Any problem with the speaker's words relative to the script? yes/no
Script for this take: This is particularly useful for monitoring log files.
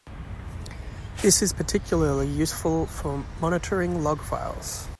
no